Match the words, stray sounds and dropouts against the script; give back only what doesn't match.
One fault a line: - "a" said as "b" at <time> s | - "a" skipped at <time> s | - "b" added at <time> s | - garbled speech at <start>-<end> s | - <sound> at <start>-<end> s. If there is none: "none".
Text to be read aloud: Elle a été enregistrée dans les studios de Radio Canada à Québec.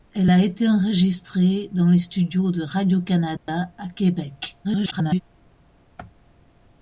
- dropout at 3.4-3.5 s
- garbled speech at 4.6-5.2 s